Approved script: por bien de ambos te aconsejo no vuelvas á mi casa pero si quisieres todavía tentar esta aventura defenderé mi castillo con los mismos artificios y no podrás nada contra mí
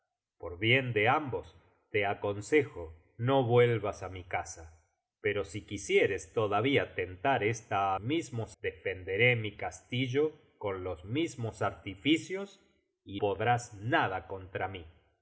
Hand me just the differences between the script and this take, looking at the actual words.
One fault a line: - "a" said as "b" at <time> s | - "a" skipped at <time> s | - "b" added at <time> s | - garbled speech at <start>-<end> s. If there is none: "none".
- "aventura" said as "mismos" at 8.0 s
- "no" skipped at 13.2 s